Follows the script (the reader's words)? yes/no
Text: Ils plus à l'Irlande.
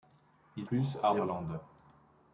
yes